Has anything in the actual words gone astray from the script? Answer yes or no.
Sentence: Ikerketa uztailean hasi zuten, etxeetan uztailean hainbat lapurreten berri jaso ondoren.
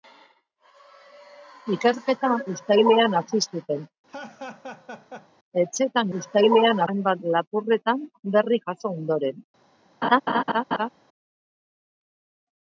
no